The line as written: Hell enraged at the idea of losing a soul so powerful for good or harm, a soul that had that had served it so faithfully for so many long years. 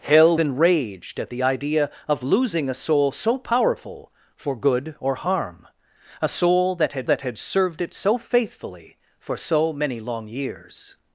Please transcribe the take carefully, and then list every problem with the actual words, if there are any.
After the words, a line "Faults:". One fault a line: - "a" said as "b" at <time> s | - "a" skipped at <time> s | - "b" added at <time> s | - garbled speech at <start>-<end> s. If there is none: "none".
Hell enraged at the idea of losing a soul so powerful for good or harm, a soul that had that had served it so faithfully for so many long years.
Faults:
none